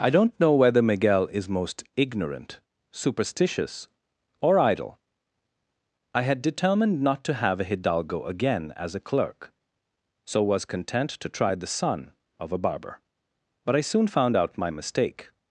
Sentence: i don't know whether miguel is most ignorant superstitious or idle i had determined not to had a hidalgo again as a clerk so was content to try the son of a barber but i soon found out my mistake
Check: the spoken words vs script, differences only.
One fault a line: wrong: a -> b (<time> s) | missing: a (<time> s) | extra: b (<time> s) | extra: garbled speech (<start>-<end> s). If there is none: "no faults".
wrong: had -> have (7.3 s)